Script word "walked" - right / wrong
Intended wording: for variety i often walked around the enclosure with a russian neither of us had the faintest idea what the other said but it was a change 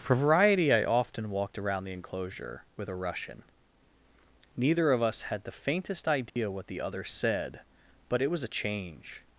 right